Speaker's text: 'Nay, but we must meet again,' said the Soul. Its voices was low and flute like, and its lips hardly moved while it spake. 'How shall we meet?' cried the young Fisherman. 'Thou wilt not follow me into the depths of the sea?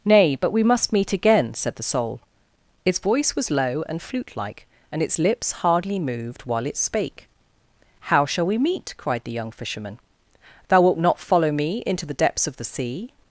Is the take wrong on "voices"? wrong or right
wrong